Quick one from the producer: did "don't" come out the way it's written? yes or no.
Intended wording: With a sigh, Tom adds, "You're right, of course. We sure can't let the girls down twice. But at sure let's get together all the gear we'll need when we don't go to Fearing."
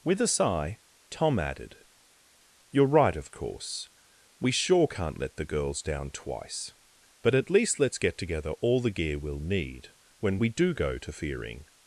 no